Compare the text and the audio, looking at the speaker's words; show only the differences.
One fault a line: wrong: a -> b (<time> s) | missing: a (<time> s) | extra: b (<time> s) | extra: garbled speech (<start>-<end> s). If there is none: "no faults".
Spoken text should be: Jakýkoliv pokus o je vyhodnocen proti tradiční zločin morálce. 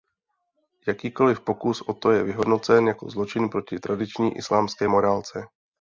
extra: to (1.9 s)
extra: jako zločin (2.9 s)
wrong: zločin -> islámské (4.4 s)